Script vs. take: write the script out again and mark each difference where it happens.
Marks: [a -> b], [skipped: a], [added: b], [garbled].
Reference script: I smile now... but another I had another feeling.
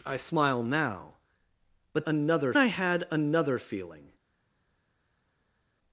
I smile now... but another I had another feeling.